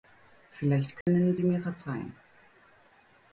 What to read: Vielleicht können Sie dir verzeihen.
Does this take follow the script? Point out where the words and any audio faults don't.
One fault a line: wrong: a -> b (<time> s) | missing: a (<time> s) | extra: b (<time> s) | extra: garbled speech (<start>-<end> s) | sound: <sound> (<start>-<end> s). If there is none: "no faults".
sound: dropout (1.0-1.1 s)
wrong: dir -> mir (1.4 s)